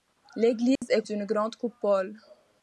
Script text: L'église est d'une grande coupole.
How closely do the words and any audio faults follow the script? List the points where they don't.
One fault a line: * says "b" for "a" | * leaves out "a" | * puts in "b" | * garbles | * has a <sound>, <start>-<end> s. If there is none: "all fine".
* has a dropout, 0.8-0.8 s